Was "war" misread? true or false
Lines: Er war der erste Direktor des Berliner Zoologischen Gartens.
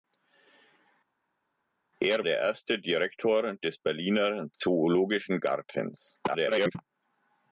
true